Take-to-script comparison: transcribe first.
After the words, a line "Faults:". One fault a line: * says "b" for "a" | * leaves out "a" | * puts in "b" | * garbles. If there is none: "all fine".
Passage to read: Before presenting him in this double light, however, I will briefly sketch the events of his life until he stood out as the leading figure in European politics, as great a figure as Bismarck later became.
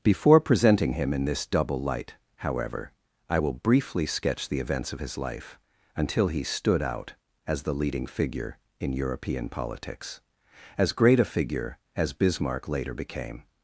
Before presenting him in this double light, however, I will briefly sketch the events of his life until he stood out as the leading figure in European politics, as great a figure as Bismarck later became.
Faults:
all fine